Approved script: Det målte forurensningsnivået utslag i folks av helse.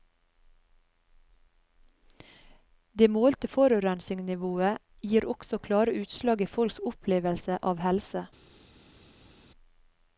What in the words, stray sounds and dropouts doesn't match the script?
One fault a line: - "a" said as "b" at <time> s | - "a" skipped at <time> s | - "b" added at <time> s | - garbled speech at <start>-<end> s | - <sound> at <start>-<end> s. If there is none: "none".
- "gir også klare" added at 5.1 s
- "opplevelse" added at 6.9 s